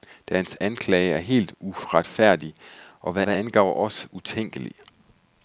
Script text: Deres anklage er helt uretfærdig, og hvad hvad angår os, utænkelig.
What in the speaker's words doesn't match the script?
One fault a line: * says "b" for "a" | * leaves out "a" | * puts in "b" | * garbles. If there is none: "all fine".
all fine